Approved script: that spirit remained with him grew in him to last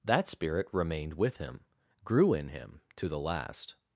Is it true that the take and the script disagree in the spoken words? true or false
true